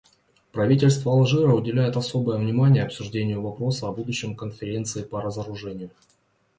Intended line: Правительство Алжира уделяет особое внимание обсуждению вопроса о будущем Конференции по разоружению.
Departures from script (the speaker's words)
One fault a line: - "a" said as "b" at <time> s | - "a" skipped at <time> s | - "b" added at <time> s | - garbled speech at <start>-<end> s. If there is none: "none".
none